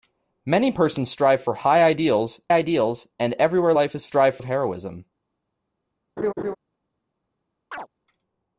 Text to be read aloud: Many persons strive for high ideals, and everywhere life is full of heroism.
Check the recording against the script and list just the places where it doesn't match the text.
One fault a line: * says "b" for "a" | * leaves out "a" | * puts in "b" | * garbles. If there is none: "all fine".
* puts in "ideals"
* says "strive" for "full"